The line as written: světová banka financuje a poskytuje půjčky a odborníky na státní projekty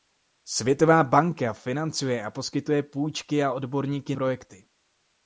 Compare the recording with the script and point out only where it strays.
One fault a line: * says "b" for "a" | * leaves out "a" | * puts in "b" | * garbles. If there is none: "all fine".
* leaves out "na státní"